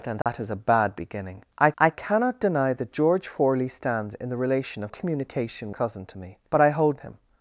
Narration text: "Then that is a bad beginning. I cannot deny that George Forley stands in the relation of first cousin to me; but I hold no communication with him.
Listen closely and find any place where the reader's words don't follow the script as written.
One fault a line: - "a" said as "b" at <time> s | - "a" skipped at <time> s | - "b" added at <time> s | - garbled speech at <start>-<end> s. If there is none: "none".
- "I" added at 1.8 s
- "first" said as "communication" at 4.9 s
- "no communication with" skipped at 7.0 s